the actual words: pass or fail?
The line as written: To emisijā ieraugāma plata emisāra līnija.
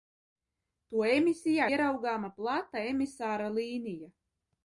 pass